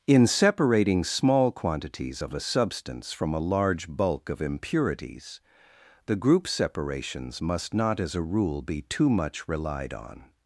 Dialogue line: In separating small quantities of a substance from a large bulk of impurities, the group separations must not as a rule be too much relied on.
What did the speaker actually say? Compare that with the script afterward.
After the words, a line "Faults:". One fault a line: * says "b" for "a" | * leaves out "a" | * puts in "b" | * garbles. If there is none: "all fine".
In separating small quantities of a substance from a large bulk of impurities, the group separations must not as a rule be too much relied on.
Faults:
all fine